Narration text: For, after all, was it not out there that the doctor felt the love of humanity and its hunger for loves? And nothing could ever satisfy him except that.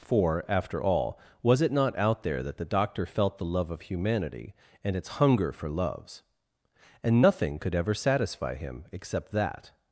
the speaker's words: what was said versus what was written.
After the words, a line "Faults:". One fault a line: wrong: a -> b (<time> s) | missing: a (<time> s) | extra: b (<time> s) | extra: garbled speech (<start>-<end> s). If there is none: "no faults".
For, after all, was it not out there that the doctor felt the love of humanity and its hunger for loves? And nothing could ever satisfy him except that.
Faults:
no faults